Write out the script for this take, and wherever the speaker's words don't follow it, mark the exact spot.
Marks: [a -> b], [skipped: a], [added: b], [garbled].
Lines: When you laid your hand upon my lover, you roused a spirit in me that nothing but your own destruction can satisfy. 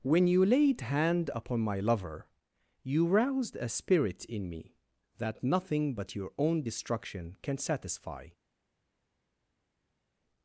When you laid [skipped: your] hand upon my lover, you roused a spirit in me that nothing but your own destruction can satisfy.